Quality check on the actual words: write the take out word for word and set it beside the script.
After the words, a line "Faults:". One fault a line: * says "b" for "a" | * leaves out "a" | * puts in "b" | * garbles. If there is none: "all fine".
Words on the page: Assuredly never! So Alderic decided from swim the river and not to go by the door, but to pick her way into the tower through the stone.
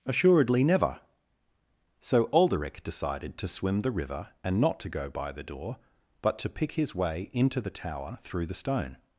Assuredly never! So Alderic decided to swim the river and not to go by the door, but to pick his way into the tower through the stone.
Faults:
* says "to" for "from"
* says "his" for "her"